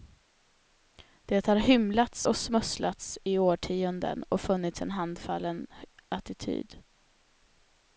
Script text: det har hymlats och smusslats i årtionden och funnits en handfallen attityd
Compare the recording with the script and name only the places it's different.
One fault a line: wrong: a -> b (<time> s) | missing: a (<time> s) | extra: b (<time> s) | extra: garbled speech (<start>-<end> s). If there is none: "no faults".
no faults